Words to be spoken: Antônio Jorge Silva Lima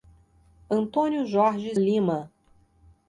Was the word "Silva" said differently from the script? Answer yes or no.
yes